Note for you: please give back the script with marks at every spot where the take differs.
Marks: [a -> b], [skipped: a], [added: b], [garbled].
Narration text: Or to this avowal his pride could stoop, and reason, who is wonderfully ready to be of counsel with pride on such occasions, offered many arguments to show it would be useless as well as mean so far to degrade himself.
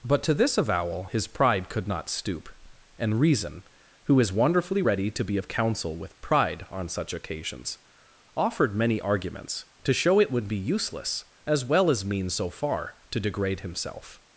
[Or -> But] to this avowal his pride could [added: not] stoop, and reason, who is wonderfully ready to be of counsel with pride on such occasions, offered many arguments to show it would be useless as well as mean so far to degrade himself.